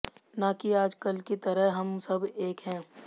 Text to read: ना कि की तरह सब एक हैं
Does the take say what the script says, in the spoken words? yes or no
no